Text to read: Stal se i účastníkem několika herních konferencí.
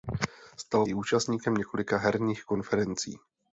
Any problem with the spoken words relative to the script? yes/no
yes